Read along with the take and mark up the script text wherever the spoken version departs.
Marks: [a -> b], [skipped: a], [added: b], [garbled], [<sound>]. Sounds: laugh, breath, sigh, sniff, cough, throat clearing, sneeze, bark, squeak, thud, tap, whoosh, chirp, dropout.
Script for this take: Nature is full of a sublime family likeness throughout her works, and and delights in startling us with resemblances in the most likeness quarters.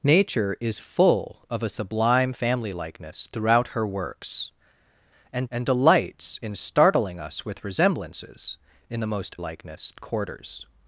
Nature is full of a sublime family likeness throughout her works, and and delights in startling us with resemblances in the most likeness quarters.